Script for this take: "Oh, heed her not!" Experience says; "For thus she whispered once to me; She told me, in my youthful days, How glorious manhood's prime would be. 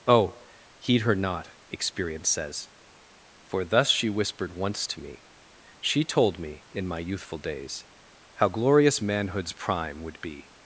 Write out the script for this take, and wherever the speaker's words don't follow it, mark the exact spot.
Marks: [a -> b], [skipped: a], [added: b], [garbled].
"Oh, heed her not!" Experience says; "For thus she whispered once to me; She told me, in my youthful days, How glorious manhood's prime would be.